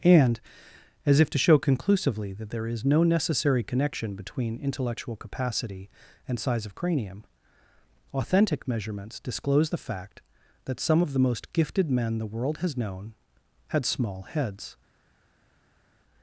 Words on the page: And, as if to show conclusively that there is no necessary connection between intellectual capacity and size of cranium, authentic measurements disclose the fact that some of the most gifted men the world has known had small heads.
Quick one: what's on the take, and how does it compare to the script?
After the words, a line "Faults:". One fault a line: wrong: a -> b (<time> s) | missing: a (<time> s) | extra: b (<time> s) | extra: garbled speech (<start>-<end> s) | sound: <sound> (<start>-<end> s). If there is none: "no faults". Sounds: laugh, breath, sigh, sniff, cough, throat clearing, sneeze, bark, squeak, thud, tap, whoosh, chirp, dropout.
And, as if to show conclusively that there is no necessary connection between intellectual capacity and size of cranium, authentic measurements disclose the fact that some of the most gifted men the world has known had small heads.
Faults:
no faults